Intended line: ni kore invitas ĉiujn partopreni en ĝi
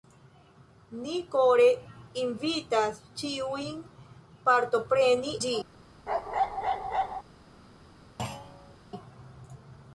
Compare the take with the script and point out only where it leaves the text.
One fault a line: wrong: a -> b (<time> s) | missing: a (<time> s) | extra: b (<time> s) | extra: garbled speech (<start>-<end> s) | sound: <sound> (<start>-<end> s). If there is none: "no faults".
missing: en (5.3 s)
sound: bark (6.1-7.2 s)
sound: thud (8.2-8.8 s)